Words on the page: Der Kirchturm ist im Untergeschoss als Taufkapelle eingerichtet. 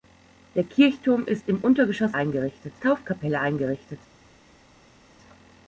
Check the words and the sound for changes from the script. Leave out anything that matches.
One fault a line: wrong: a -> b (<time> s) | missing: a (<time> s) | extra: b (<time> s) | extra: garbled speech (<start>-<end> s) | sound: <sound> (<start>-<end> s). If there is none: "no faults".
wrong: als -> eingerichtet (2.1 s)